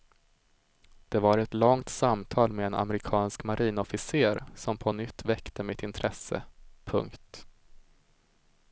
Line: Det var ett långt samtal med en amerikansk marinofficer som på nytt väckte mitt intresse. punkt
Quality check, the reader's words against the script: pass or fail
pass